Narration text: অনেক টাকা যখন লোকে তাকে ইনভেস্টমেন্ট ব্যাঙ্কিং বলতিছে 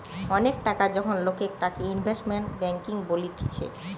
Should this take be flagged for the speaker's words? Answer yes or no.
no